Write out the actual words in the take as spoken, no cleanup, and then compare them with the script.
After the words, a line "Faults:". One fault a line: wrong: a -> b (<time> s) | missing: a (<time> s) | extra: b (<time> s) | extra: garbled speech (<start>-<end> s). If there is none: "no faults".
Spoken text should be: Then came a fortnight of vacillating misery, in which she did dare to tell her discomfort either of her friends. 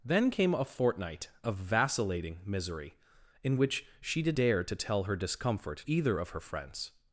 Then came a fortnight of vacillating misery, in which she did dare to tell her discomfort either of her friends.
Faults:
no faults